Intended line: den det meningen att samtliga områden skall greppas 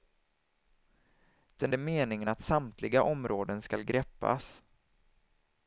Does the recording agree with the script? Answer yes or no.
yes